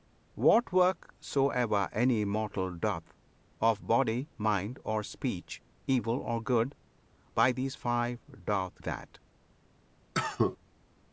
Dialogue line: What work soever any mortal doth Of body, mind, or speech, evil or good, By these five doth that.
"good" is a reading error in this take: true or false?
false